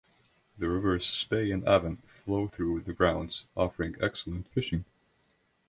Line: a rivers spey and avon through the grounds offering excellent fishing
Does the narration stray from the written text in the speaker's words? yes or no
yes